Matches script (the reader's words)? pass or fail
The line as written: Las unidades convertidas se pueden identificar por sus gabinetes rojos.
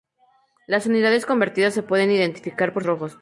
fail